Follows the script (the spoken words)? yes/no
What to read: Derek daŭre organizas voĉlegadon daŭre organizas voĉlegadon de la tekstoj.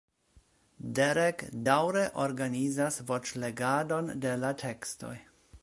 no